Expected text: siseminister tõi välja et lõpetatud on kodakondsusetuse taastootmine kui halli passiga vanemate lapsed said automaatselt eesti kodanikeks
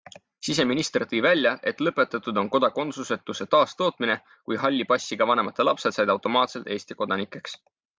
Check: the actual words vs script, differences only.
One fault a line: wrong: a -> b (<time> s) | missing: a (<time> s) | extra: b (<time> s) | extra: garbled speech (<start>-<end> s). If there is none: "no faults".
no faults